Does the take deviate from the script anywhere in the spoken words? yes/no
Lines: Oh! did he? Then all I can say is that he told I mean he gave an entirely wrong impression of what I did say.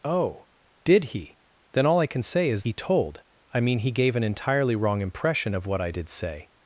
yes